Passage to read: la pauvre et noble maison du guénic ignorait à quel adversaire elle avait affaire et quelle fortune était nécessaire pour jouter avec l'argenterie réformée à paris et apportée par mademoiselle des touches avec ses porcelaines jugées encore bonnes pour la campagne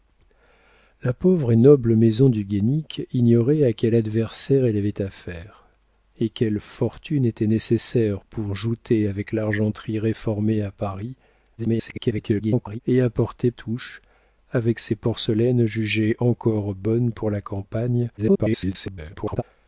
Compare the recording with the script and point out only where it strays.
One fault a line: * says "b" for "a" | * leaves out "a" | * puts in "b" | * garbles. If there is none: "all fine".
* garbles
* leaves out "par mademoiselle des"
* garbles